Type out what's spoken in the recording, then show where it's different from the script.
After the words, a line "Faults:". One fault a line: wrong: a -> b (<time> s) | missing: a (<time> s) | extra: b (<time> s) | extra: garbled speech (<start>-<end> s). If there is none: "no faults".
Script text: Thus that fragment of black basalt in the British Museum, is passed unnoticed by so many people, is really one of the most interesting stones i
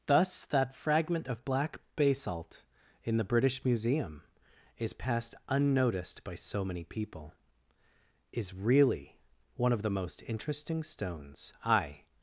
Thus that fragment of black basalt in the British Museum, is passed unnoticed by so many people, is really one of the most interesting stones i
Faults:
no faults